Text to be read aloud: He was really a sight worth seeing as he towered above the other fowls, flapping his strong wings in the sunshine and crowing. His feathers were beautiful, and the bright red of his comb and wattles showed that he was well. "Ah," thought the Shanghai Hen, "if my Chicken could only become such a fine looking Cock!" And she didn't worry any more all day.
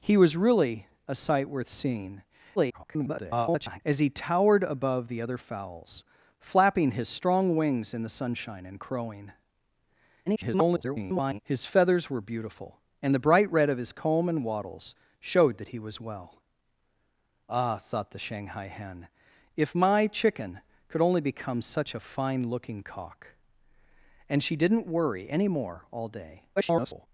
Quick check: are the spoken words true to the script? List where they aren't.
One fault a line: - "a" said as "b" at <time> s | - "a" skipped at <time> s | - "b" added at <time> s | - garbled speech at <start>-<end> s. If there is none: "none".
- garbled speech at 2.6-3.8 s
- garbled speech at 10.3-11.4 s
- garbled speech at 26.6-27.1 s